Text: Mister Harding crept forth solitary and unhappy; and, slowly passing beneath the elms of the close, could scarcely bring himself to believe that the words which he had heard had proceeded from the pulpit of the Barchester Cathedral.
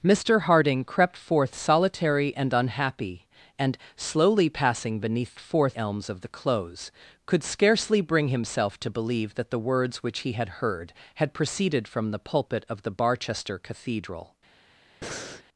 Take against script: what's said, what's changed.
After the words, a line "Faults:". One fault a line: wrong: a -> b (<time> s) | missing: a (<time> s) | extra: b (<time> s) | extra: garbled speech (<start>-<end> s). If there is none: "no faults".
Mister Harding crept forth solitary and unhappy; and, slowly passing beneath forth elms of the close, could scarcely bring himself to believe that the words which he had heard had proceeded from the pulpit of the Barchester Cathedral.
Faults:
wrong: the -> forth (5.4 s)